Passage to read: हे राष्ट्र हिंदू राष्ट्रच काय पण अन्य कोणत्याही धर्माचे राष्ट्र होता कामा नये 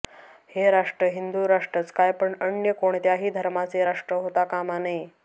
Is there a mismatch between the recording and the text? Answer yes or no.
no